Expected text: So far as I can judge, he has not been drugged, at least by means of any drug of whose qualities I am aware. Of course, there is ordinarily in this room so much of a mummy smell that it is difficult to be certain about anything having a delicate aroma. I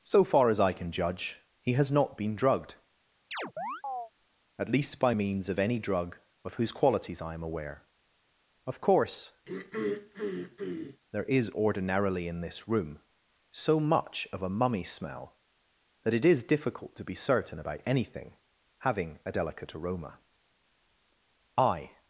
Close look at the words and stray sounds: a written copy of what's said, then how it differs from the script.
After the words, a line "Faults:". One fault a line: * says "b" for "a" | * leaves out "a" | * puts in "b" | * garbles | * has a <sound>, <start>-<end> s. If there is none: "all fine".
So far as I can judge, he has not been drugged, at least by means of any drug of whose qualities I am aware. Of course, there is ordinarily in this room so much of a mummy smell that it is difficult to be certain about anything having a delicate aroma. I
Faults:
* has a chirp, 3.3-4.1 s
* has a throat clearing, 9.4-11.0 s